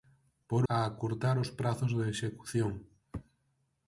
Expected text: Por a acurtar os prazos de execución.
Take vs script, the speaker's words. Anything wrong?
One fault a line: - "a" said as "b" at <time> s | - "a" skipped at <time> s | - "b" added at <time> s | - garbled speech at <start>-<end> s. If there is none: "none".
none